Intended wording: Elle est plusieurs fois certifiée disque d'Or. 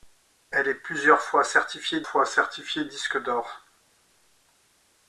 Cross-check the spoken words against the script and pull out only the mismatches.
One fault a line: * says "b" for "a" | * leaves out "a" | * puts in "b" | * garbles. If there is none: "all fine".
* puts in "fois certifiée"